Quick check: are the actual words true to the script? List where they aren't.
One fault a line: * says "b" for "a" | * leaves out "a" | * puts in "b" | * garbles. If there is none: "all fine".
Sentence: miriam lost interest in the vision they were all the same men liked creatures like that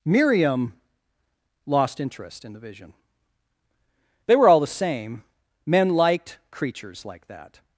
all fine